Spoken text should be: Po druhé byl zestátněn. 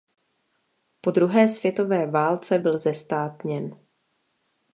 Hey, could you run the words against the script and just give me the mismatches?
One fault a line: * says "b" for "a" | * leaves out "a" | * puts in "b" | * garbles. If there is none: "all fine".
* puts in "světové válce"